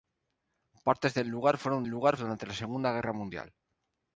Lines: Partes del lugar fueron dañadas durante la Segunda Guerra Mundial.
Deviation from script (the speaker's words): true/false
true